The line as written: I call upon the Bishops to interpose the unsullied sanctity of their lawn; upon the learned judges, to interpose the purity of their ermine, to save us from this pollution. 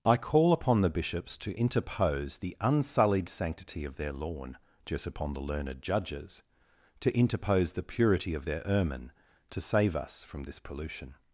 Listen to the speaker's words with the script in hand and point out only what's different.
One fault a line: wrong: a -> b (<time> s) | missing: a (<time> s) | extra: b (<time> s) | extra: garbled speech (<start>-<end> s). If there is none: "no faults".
extra: just (4.8 s)